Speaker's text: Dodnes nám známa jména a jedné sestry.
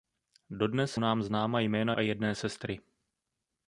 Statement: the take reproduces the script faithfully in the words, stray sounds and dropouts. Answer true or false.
true